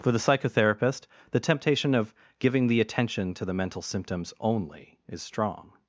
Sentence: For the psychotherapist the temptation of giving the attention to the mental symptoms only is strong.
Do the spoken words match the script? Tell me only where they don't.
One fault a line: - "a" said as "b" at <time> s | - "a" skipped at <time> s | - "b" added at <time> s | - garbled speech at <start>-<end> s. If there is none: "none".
none